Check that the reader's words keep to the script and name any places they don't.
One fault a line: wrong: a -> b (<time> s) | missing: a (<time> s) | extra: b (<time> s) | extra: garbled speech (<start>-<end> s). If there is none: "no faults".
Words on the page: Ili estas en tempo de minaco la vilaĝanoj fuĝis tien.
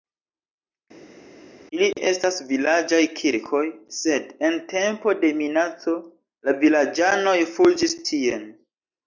extra: vilaĝaj kirkoj sed (2.5 s)